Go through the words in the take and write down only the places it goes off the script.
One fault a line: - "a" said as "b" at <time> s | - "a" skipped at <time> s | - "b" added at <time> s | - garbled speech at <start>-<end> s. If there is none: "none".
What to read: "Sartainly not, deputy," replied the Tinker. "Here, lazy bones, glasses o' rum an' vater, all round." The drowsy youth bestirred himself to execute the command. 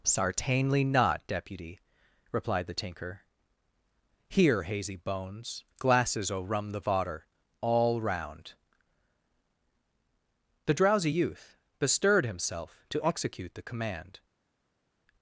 - "lazy" said as "hazy" at 4.6 s
- "an" said as "the" at 6.7 s